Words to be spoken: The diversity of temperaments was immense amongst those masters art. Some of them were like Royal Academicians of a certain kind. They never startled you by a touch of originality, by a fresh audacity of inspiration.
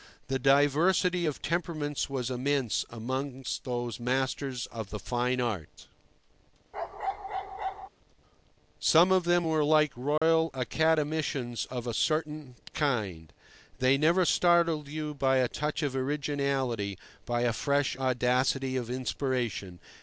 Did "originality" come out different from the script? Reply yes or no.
no